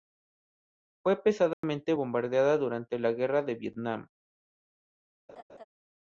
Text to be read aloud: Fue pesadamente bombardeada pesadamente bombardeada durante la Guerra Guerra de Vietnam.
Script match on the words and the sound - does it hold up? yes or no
no